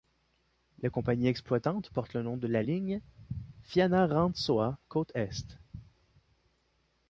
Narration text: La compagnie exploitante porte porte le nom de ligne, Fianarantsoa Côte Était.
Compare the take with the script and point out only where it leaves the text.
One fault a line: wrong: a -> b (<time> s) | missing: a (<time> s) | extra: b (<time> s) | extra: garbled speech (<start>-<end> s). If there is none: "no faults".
missing: porte (2.1 s)
extra: la (2.5 s)
wrong: Était -> Est (5.1 s)